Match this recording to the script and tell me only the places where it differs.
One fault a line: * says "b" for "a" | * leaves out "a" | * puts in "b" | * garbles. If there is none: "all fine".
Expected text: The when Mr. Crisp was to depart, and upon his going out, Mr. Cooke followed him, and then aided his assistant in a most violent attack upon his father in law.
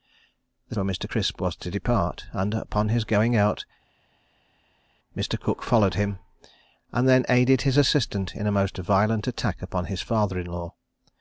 all fine